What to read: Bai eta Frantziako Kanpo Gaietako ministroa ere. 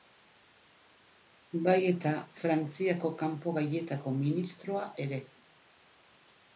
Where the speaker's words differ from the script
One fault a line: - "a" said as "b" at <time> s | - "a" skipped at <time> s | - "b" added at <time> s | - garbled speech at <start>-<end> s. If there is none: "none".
none